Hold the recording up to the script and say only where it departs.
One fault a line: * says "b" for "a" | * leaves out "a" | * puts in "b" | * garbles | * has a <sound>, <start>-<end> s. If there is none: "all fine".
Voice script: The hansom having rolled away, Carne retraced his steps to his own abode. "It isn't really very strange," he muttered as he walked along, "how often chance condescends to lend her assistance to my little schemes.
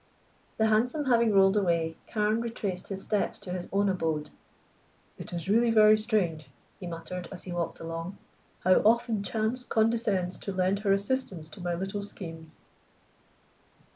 * says "is" for "isn't"